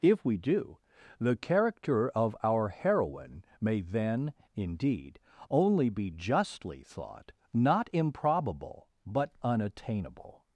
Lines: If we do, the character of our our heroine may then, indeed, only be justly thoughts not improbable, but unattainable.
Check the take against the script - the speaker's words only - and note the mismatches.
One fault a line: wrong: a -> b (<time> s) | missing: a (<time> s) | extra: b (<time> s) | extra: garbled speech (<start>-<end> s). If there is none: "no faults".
missing: our (2.7 s)
wrong: thoughts -> thought (6.8 s)